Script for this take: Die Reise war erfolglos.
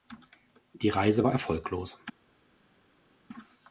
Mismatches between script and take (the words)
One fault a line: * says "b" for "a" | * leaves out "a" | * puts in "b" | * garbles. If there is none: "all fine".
all fine